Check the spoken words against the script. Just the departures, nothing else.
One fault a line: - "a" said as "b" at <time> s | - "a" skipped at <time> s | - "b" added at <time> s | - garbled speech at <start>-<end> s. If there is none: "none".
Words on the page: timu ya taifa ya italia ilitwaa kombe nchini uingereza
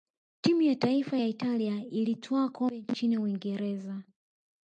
none